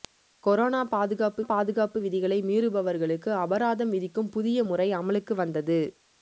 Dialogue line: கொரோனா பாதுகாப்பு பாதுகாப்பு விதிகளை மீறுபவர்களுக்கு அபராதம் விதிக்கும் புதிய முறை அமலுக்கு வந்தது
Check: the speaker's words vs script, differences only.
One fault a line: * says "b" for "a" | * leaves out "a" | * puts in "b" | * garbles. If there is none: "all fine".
all fine